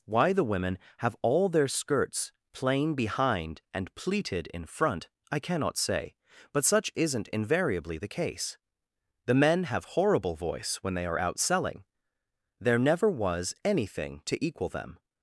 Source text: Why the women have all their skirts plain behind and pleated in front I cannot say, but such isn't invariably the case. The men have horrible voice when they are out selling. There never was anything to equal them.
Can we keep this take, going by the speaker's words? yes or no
yes